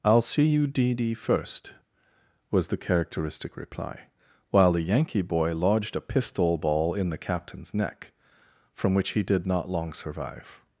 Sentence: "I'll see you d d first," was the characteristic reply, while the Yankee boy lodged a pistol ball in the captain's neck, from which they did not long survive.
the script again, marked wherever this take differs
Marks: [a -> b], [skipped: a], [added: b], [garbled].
"I'll see you d d first," was the characteristic reply, while the Yankee boy lodged a pistol ball in the captain's neck, from which [they -> he] did not long survive.